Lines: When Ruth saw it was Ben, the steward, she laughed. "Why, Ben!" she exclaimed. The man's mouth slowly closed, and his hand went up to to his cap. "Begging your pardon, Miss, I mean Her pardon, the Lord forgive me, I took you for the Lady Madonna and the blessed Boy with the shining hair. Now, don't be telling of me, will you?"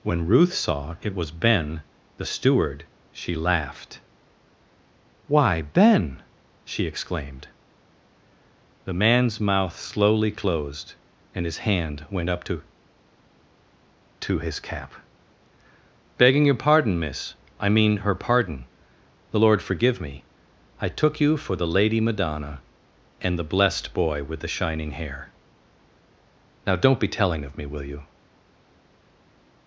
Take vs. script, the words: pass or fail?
pass